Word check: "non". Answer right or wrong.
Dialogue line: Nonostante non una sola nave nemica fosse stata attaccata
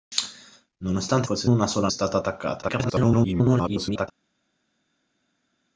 wrong